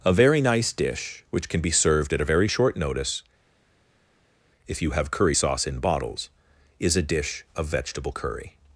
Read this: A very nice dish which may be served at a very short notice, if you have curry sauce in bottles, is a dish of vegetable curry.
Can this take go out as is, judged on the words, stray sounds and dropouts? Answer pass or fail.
fail